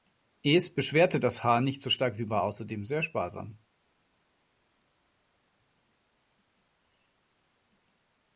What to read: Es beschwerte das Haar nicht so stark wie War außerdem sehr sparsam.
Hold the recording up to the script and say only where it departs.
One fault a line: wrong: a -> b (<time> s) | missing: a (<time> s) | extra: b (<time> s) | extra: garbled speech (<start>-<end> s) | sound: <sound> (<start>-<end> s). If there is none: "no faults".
no faults